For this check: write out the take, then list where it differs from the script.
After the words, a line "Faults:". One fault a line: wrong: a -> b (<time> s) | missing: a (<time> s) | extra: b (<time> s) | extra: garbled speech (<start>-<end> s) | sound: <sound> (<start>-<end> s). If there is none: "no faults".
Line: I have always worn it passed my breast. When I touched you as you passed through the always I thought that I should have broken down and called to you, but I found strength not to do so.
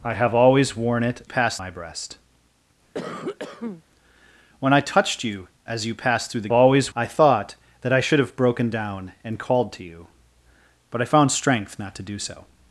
I have always worn it passed my breast. When I touched you as you passed through the always I thought that I should have broken down and called to you, but I found strength not to do so.
Faults:
sound: cough (2.9-3.8 s)